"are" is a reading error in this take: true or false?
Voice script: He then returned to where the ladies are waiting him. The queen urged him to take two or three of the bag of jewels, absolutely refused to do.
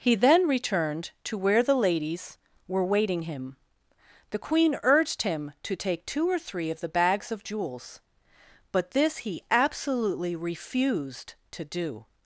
true